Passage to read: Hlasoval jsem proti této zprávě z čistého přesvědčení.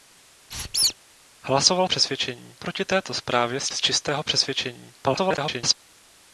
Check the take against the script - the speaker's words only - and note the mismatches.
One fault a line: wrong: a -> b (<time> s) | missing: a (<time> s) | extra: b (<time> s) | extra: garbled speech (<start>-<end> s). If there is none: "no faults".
wrong: jsem -> přesvědčení (1.8 s)
extra: z (3.7 s)
extra: garbled speech (5.0-5.7 s)